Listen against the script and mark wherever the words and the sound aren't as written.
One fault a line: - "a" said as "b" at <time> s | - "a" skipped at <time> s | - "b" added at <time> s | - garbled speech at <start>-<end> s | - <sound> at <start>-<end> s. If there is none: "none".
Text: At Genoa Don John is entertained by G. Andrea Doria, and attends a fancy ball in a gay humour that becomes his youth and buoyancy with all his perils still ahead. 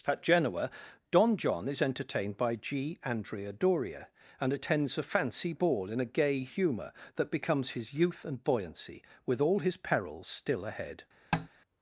- tap at 11.3-11.5 s